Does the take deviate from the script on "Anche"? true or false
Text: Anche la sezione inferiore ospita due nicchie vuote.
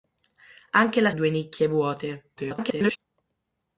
false